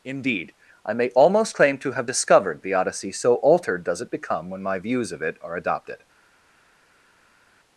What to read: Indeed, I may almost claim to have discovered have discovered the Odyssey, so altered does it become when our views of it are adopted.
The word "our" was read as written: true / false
false